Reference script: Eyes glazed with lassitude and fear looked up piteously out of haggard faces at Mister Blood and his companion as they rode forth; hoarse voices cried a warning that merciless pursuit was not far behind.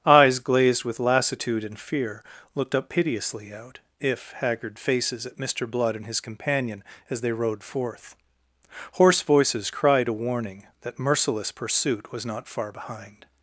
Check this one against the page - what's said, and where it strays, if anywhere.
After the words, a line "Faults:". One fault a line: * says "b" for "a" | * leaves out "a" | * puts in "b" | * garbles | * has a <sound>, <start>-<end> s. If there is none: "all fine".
Eyes glazed with lassitude and fear looked up piteously out if haggard faces at Mister Blood and his companion as they rode forth; hoarse voices cried a warning that merciless pursuit was not far behind.
Faults:
* says "if" for "of"